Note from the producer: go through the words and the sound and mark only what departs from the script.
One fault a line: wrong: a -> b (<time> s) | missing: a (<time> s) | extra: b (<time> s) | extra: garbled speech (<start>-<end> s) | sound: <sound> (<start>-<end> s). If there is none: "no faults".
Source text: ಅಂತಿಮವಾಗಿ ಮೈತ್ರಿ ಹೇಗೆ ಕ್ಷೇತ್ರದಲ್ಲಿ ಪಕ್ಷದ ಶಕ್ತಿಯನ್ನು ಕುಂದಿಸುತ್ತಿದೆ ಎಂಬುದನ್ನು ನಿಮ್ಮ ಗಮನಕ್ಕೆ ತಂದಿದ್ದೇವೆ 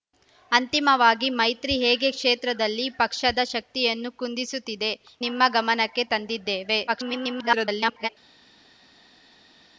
missing: ಎಂಬುದನ್ನು (4.9 s)
extra: garbled speech (6.9-8.1 s)